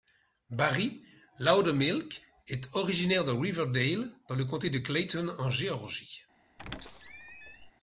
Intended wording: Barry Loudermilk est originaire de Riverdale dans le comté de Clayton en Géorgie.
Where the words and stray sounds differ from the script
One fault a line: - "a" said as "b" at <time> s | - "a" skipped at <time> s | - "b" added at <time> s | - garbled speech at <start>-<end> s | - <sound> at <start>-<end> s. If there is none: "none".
- squeak at 6.6-7.7 s